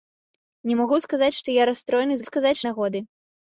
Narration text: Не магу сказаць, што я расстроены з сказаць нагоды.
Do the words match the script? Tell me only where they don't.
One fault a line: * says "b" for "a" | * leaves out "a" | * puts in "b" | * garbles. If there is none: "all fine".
all fine